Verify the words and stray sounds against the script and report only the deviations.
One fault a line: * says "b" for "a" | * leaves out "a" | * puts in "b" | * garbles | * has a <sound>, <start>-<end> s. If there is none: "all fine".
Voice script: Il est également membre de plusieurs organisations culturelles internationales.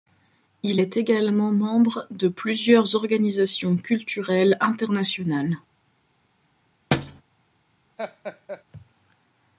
* has a thud, 6.9-7.2 s
* has a laugh, 8.0-8.6 s